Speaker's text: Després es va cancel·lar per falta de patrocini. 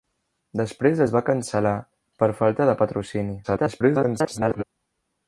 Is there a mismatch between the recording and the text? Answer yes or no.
yes